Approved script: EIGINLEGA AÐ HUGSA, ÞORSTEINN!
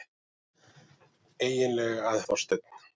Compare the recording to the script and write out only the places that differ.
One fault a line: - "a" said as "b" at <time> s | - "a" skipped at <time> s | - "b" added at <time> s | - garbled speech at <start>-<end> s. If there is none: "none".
- "HUGSA" skipped at 2.2 s